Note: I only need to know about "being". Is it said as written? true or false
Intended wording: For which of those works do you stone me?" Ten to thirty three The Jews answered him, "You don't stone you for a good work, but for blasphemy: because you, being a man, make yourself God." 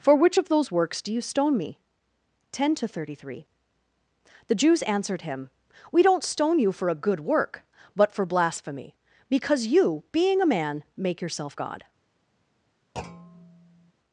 true